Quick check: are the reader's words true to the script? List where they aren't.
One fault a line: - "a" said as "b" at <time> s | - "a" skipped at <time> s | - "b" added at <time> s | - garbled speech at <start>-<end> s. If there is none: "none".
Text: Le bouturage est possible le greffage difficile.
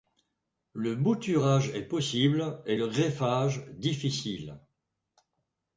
- "et" added at 2.6 s